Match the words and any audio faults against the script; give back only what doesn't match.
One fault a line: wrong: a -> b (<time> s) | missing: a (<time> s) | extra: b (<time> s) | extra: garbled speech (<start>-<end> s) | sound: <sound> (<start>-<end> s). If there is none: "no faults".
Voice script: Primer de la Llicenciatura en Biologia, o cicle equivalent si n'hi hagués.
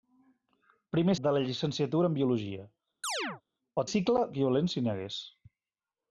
sound: chirp (3.0-3.4 s)